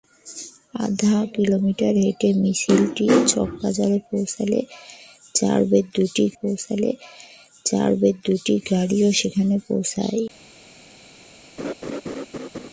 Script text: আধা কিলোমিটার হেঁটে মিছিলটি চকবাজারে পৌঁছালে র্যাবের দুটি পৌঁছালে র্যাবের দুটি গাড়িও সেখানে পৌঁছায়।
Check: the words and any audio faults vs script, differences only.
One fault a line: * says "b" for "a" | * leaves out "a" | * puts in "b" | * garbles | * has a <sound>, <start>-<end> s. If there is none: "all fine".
* has a laugh, 11.6-12.7 s